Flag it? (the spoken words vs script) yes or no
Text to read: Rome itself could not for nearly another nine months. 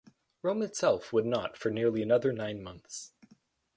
yes